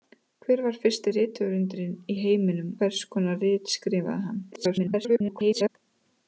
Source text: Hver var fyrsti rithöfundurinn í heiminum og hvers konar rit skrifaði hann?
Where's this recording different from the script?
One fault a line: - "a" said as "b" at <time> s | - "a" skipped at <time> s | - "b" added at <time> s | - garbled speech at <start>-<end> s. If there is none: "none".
- "og" skipped at 2.7 s
- garbled speech at 4.5-5.7 s